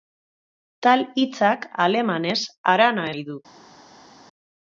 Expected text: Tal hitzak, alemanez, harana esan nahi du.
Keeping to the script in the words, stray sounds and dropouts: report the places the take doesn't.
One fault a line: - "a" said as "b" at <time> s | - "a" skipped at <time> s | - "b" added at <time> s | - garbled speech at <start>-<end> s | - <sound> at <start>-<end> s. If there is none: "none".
- "esan" skipped at 3.1 s